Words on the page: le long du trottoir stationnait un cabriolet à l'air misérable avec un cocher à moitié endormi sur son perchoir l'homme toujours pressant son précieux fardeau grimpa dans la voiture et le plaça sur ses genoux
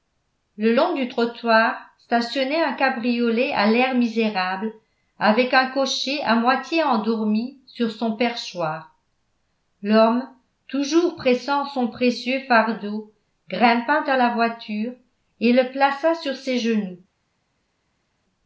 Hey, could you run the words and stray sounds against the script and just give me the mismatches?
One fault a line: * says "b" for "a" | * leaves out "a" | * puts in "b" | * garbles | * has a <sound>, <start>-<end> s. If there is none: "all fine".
all fine